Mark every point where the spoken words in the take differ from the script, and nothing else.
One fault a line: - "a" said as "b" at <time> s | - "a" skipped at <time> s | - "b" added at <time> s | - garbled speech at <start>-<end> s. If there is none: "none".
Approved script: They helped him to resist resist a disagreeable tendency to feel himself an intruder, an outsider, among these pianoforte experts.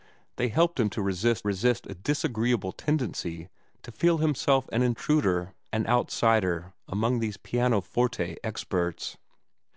none